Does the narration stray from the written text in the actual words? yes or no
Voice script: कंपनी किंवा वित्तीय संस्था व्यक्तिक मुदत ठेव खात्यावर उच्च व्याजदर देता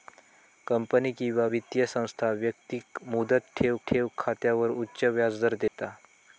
yes